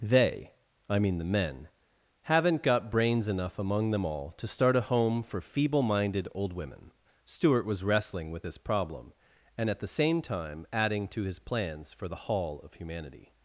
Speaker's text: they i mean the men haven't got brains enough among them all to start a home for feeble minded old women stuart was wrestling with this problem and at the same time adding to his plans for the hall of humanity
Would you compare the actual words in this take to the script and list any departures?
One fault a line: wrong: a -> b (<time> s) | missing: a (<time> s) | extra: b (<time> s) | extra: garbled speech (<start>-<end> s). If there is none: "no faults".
no faults